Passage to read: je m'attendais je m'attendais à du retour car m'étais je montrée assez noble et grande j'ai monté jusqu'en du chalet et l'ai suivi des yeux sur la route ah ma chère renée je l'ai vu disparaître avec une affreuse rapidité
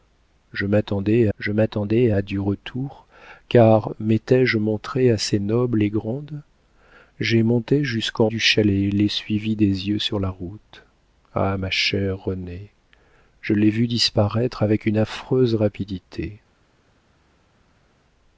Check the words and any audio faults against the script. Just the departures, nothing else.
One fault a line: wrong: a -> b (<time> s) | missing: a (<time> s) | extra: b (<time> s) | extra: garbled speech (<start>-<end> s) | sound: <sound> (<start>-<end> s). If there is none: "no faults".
no faults